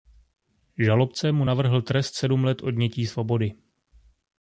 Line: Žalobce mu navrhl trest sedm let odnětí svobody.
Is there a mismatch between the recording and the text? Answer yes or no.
no